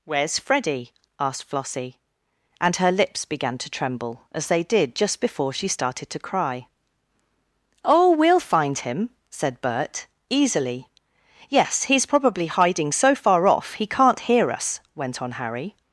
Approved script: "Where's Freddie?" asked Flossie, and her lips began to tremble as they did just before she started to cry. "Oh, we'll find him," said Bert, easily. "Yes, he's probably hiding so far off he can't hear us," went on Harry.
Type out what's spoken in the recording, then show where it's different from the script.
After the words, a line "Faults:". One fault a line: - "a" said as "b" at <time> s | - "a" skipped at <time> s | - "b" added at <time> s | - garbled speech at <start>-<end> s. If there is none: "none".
"Where's Freddie?" asked Flossie, and her lips began to tremble as they did just before she started to cry. "Oh, we'll find him," said Bert, easily. "Yes, he's probably hiding so far off he can't hear us," went on Harry.
Faults:
none